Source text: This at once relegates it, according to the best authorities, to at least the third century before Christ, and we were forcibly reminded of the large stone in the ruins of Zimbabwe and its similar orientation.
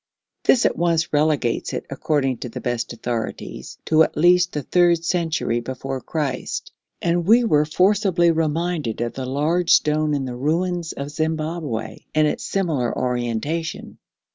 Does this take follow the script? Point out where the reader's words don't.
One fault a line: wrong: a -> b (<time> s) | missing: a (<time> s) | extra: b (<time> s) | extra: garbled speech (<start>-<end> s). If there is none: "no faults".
no faults